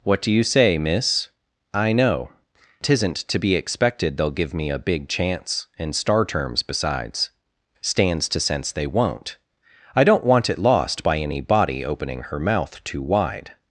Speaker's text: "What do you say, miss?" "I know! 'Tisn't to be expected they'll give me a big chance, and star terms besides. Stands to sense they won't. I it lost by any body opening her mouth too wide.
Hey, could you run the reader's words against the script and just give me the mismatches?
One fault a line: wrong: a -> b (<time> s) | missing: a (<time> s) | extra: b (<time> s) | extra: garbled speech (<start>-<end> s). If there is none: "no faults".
extra: don't want (10.0 s)